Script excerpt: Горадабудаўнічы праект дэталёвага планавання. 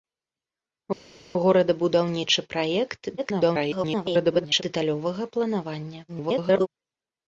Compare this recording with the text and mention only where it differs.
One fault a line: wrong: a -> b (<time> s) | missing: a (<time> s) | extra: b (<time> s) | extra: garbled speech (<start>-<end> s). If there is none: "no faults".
extra: garbled speech (3.2-4.6 s)
extra: garbled speech (6.1-6.7 s)